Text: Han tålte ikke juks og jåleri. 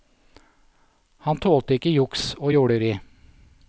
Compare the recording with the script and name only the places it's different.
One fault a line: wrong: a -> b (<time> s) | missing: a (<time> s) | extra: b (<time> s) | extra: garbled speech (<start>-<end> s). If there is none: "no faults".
no faults